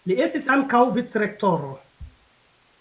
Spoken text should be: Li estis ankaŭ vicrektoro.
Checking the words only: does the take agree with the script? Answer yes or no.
yes